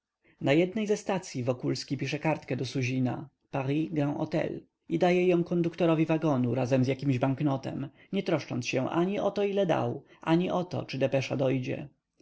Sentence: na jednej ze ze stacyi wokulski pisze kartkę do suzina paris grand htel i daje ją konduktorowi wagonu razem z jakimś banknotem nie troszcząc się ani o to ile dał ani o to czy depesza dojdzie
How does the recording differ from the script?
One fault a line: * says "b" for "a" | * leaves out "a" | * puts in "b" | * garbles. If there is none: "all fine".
* leaves out "ze"